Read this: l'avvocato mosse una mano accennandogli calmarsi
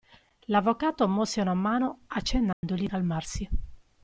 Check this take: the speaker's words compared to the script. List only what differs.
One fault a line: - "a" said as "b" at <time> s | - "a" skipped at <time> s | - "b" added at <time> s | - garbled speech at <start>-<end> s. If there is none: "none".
none